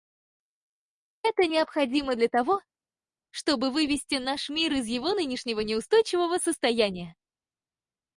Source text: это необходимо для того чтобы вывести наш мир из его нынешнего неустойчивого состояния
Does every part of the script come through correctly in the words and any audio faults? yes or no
yes